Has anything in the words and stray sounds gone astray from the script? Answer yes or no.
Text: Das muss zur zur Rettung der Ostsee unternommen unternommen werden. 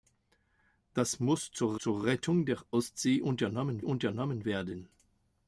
no